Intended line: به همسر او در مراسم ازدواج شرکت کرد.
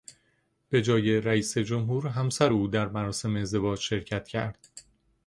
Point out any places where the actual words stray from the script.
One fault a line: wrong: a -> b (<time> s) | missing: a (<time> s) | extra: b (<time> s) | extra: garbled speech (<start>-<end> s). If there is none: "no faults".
extra: جای رئیس جمهور (0.8 s)